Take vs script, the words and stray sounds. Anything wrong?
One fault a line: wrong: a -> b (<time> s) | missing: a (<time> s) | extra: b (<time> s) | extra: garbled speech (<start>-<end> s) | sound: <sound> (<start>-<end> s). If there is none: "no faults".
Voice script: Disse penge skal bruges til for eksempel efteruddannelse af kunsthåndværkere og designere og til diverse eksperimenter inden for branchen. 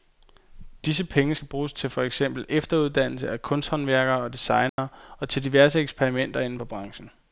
sound: dropout (4.7-4.8 s)